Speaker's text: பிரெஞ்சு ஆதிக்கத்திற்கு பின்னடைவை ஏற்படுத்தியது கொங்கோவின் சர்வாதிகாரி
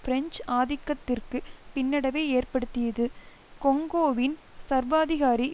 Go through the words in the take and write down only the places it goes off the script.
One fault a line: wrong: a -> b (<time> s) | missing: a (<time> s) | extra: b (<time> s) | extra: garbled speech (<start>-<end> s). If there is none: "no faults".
no faults